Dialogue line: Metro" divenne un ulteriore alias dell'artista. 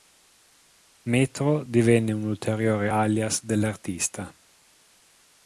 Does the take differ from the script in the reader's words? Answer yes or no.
no